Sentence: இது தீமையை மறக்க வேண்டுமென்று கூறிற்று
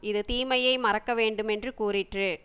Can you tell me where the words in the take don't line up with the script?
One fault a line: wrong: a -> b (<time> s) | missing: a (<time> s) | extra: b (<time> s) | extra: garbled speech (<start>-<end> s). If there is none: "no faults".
no faults